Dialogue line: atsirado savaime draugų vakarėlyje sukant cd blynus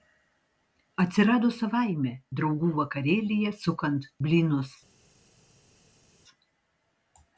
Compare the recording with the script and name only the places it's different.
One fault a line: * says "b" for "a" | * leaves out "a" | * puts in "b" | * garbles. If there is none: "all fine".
* leaves out "cd"